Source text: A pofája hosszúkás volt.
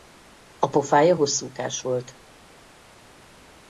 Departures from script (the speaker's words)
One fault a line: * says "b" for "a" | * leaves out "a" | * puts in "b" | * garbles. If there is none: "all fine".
all fine